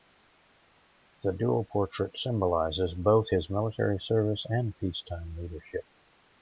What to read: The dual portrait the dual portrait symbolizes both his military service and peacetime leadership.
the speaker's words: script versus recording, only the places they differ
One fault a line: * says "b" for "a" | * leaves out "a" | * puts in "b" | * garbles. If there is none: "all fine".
* leaves out "the dual portrait"